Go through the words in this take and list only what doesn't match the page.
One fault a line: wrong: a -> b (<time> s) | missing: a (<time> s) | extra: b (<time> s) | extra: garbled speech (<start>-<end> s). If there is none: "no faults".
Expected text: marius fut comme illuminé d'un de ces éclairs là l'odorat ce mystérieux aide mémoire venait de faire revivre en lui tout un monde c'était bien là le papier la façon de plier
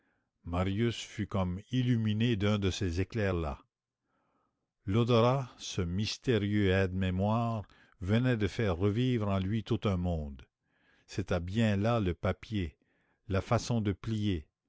no faults